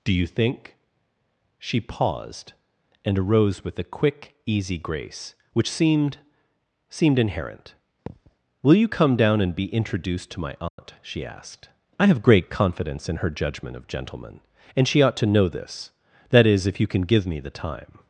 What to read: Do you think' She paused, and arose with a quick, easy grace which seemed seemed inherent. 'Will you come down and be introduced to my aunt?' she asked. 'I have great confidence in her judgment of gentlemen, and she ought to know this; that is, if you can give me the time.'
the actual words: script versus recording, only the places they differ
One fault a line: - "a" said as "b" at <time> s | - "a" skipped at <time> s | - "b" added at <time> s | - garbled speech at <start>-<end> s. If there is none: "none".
none